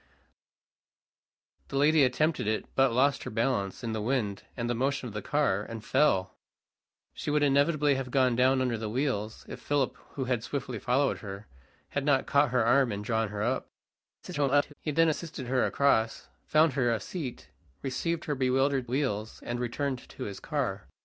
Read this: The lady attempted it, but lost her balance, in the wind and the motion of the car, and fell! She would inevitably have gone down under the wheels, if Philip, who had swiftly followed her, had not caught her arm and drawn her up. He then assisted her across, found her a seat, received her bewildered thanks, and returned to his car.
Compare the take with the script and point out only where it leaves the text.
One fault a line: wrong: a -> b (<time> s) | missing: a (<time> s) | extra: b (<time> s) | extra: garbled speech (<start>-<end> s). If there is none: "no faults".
extra: garbled speech (14.2-14.7 s)
wrong: thanks -> wheels (18.8 s)